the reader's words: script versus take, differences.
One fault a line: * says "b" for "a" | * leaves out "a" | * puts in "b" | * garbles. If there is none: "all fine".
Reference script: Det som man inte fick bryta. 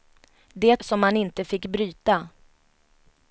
all fine